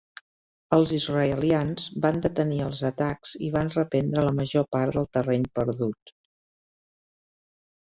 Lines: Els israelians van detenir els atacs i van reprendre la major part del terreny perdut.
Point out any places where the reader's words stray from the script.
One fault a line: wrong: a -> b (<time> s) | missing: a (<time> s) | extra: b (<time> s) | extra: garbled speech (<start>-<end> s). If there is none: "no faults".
no faults